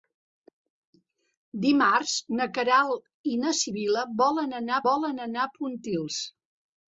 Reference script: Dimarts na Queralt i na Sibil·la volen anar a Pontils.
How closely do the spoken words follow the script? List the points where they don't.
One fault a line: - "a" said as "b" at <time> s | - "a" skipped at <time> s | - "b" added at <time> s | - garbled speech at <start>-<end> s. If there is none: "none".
- "volen anar" added at 4.9 s